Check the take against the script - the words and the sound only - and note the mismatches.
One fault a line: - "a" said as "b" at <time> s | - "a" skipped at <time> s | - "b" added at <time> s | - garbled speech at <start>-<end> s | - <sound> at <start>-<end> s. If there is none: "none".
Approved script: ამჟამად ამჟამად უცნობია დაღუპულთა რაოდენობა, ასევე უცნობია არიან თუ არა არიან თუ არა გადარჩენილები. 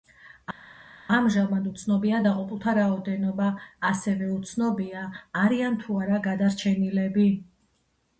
- "ამჟამად" skipped at 1.7 s
- "არიან თუ არა" skipped at 6.2 s